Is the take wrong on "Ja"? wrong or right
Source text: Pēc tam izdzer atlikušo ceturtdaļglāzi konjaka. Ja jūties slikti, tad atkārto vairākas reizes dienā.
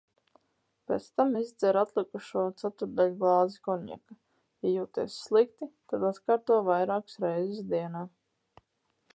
right